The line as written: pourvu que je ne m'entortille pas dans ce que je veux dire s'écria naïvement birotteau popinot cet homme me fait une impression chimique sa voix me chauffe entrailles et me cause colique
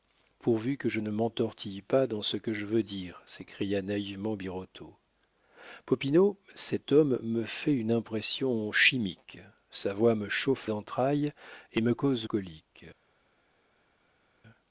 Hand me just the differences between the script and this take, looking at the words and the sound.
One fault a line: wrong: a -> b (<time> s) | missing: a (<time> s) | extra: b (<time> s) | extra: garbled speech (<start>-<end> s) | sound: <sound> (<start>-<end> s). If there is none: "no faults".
no faults